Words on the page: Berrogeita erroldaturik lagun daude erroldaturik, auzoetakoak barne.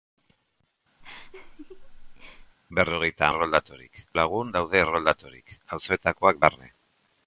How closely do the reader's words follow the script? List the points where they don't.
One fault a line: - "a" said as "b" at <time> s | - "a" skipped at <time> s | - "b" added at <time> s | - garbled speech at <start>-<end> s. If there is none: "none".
none